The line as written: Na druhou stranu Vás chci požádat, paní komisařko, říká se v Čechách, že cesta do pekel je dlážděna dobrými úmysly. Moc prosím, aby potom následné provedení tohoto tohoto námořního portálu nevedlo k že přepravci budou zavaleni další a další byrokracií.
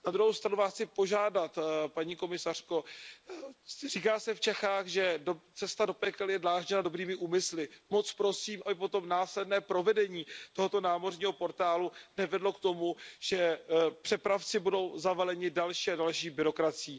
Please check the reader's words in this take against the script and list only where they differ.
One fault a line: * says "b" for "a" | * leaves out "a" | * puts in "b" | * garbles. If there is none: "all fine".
* leaves out "tohoto"
* puts in "tomu"